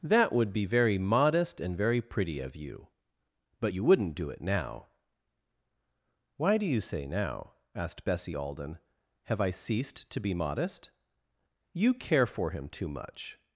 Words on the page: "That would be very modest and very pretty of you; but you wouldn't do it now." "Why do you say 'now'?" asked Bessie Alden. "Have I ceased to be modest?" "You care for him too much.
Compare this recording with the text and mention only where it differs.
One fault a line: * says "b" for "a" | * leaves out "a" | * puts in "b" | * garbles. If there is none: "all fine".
all fine